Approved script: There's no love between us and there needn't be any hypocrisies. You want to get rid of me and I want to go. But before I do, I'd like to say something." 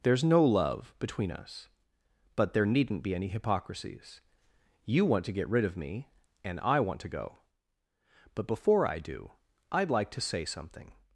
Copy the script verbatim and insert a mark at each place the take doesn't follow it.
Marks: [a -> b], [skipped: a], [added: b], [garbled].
There's no love between us [and -> but] there needn't be any hypocrisies. You want to get rid of me and I want to go. But before I do, I'd like to say something."